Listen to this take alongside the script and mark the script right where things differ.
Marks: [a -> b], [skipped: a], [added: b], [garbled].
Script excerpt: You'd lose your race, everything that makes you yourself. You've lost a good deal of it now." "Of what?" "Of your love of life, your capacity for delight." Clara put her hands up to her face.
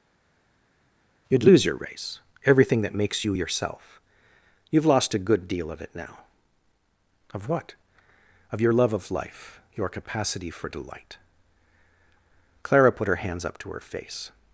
You'd lose your race, everything that makes you yourself. You've lost a good deal of it now." "Of what?" "Of your love of life, your capacity for delight." Clara put her hands up to her face.